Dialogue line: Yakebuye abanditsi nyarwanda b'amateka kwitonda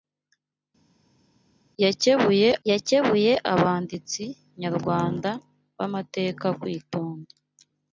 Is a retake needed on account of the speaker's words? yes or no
yes